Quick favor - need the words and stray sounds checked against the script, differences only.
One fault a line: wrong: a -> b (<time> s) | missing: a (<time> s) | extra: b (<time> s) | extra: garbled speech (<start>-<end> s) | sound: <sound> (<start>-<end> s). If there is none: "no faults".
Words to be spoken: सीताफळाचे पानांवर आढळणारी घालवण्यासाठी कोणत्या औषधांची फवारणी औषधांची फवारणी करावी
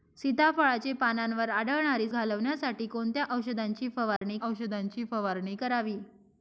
sound: dropout (4.2-4.2 s)